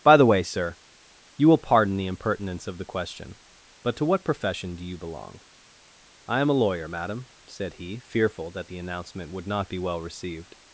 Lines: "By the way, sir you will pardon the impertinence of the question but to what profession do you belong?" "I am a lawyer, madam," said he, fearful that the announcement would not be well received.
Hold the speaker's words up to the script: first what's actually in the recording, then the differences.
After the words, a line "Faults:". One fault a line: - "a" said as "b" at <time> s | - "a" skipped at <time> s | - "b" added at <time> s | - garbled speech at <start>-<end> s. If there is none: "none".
"By the way, sir you will pardon the impertinence of the question but to what profession do you belong?" "I am a lawyer, madam," said he, fearful that the announcement would not be well received.
Faults:
none